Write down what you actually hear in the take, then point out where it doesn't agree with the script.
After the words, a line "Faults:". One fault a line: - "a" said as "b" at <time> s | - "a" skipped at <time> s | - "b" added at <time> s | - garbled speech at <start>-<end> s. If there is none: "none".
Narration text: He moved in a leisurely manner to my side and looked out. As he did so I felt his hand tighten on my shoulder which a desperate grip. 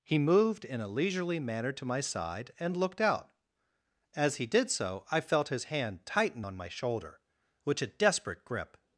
He moved in a leisurely manner to my side and looked out. As he did so I felt his hand tighten on my shoulder which a desperate grip.
Faults:
none